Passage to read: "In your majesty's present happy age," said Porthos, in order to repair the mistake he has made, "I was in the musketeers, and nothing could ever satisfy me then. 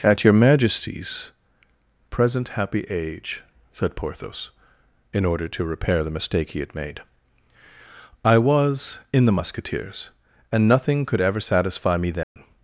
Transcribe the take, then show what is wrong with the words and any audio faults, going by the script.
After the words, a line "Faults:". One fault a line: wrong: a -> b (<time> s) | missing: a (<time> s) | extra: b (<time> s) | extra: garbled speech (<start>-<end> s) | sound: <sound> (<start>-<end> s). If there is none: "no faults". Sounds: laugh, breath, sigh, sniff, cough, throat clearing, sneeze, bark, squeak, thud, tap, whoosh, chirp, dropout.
"At your majesty's present happy age," said Porthos, in order to repair the mistake he had made, "I was in the musketeers, and nothing could ever satisfy me then.
Faults:
wrong: In -> At (0.0 s)
wrong: has -> had (6.6 s)
sound: dropout (12.2-12.4 s)